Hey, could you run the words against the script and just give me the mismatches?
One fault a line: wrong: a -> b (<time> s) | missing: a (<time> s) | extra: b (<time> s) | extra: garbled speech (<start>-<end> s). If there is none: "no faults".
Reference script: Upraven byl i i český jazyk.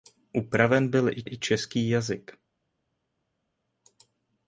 no faults